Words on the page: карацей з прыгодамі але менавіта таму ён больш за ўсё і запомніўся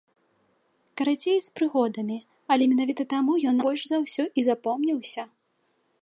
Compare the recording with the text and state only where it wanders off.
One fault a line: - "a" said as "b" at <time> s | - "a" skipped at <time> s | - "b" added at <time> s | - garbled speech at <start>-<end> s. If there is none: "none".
none